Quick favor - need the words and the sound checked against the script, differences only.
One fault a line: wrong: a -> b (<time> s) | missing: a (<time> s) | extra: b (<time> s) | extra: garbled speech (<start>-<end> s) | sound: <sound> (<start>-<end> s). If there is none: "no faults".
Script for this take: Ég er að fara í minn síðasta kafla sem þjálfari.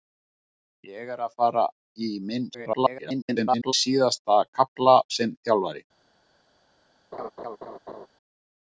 extra: garbled speech (2.5-3.7 s)
sound: laugh (7.1-8.1 s)